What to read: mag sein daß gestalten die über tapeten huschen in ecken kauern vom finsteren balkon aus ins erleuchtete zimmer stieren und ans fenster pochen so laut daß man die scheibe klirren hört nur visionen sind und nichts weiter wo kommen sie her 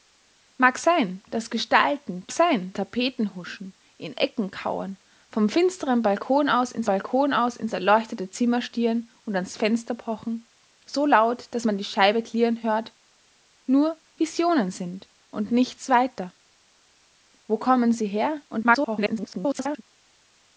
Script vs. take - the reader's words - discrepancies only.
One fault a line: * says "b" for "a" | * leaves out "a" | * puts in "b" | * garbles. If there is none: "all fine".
* says "sein" for "über"
* puts in "balkon aus ins"
* garbles